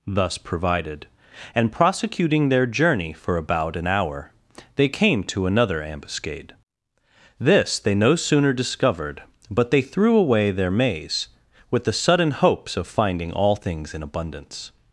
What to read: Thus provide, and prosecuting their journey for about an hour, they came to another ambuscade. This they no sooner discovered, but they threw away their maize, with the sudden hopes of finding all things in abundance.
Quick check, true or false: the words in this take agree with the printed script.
false